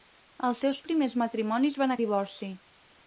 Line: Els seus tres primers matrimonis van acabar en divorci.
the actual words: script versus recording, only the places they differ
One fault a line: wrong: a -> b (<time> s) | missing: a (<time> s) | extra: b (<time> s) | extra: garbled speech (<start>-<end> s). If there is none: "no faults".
missing: tres (0.8 s)
missing: acabar (2.0 s)